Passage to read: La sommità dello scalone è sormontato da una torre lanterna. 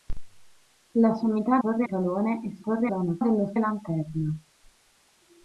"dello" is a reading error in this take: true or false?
true